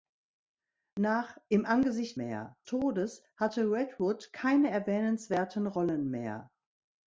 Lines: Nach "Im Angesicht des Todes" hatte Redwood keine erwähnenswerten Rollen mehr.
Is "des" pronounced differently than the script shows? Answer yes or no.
yes